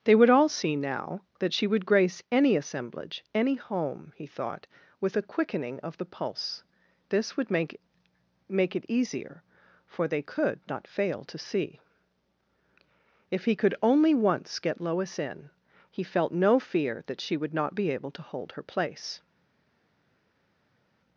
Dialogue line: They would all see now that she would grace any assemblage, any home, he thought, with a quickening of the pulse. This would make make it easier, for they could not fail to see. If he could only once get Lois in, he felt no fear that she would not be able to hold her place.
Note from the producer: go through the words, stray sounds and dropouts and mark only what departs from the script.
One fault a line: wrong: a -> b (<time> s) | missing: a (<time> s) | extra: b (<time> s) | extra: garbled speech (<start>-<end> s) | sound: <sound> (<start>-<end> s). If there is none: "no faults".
no faults